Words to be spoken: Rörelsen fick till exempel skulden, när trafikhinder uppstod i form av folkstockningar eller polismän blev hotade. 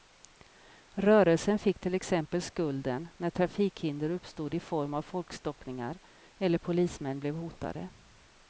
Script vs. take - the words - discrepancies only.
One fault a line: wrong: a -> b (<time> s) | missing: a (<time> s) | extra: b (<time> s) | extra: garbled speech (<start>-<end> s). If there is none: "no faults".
no faults